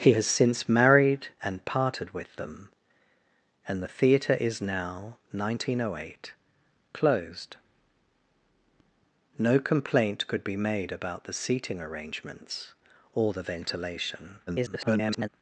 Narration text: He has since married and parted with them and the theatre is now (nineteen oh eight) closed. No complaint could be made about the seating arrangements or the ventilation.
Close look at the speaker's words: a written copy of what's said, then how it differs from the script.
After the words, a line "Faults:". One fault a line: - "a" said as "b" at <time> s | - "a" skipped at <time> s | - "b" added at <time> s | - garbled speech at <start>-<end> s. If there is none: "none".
He has since married and parted with them and the theatre is now (nineteen oh eight) closed. No complaint could be made about the seating arrangements or the ventilation. [garbled]
Faults:
- garbled speech at 14.5-15.3 s